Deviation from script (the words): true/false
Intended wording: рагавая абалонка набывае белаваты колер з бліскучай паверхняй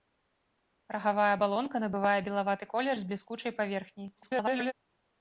true